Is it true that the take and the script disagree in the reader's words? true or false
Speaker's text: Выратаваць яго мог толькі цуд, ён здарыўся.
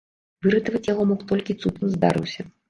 false